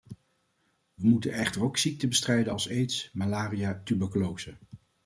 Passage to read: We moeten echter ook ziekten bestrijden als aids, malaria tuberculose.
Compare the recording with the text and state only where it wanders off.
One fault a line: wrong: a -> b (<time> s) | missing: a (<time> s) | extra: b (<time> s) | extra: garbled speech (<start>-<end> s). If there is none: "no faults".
no faults